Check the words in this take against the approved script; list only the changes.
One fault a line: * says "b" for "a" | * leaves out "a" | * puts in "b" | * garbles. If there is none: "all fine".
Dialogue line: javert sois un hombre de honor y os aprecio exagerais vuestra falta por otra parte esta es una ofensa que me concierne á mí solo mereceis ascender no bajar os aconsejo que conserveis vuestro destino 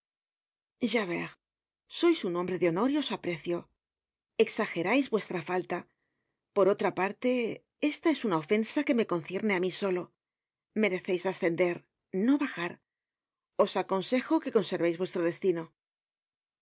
all fine